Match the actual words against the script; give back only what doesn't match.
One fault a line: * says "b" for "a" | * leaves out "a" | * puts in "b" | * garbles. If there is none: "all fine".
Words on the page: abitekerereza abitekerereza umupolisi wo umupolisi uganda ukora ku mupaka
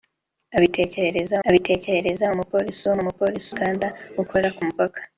all fine